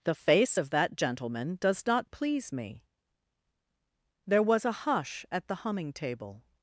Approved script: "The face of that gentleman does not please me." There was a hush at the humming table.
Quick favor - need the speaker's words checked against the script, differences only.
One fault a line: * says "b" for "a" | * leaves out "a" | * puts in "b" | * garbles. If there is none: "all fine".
all fine